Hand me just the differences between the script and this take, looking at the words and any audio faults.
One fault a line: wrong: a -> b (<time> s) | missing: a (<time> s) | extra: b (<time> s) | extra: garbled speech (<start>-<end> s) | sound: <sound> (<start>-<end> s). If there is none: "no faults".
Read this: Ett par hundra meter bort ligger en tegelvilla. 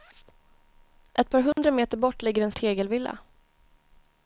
sound: dropout (1.5-1.6 s)